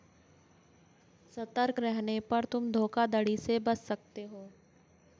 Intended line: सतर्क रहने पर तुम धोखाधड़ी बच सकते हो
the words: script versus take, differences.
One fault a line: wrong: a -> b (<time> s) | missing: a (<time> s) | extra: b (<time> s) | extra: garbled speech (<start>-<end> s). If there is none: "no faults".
extra: से (3.4 s)